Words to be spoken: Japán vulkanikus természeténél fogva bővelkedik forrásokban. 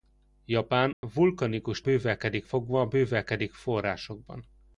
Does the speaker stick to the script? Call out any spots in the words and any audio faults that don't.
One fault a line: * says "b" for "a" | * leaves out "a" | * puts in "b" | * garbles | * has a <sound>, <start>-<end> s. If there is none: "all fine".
* has a dropout, 0.9-1.0 s
* says "bővelkedik" for "természeténél"